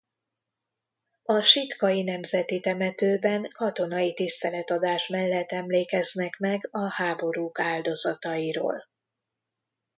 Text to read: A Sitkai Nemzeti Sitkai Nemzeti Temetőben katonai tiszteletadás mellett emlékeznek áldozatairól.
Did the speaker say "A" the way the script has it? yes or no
yes